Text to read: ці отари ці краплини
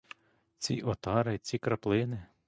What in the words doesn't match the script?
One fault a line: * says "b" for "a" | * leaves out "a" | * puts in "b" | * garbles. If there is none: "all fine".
all fine